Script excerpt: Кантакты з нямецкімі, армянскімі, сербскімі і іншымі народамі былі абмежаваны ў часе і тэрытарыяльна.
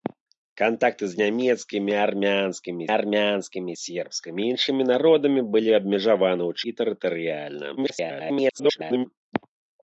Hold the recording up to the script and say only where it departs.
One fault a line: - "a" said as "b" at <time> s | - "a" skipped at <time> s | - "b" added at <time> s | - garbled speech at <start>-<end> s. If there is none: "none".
- "армянскімі" added at 3.0 s
- "часе" skipped at 6.7 s
- garbled speech at 7.8-9.1 s